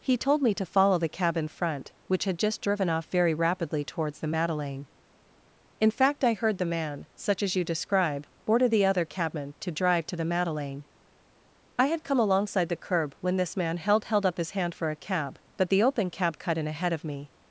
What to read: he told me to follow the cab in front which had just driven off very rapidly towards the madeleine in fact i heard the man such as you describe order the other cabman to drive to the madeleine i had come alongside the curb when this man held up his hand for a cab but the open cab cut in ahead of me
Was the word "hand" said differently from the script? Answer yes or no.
no